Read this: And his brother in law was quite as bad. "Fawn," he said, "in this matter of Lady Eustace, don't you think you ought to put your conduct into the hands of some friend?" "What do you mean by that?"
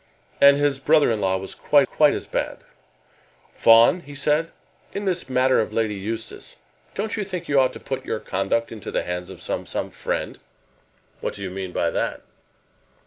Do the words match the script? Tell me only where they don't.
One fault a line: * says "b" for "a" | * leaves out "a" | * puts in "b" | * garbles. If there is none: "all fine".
* puts in "quite"
* puts in "some"